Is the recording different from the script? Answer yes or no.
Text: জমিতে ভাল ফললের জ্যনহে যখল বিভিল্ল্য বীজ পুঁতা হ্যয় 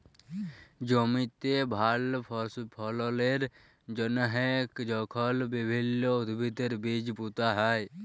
yes